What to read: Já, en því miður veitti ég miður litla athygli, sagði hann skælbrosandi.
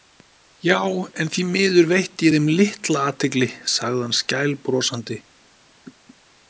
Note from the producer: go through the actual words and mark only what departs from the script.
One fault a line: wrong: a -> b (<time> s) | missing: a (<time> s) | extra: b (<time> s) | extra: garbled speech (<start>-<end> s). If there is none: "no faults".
wrong: miður -> þeim (2.3 s)